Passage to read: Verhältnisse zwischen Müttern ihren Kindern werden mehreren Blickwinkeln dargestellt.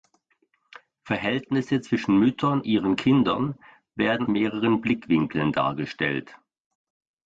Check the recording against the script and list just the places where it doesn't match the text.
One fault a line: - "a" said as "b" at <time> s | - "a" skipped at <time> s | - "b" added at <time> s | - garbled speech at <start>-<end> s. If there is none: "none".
none